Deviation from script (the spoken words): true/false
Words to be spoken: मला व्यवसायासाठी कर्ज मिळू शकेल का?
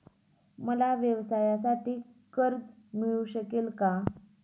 false